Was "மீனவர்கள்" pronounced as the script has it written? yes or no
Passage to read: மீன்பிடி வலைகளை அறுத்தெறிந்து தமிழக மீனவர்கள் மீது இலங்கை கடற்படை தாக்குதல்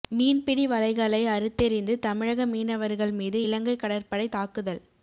yes